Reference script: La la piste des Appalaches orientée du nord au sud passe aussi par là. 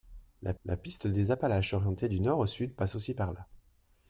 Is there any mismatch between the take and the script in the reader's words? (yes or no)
no